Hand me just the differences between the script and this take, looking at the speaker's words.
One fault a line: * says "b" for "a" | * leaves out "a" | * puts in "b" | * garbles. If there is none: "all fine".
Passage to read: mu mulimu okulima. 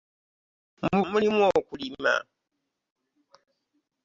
all fine